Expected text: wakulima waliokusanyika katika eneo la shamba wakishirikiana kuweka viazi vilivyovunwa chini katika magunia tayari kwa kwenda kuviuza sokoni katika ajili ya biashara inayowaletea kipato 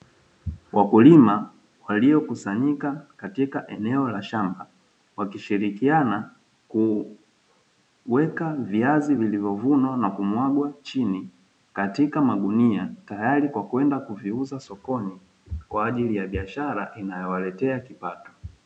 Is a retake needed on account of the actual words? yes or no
yes